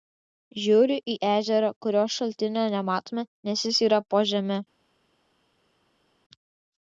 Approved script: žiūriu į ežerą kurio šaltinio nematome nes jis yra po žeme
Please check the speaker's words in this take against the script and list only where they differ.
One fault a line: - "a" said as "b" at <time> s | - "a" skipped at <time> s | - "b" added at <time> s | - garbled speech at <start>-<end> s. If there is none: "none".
none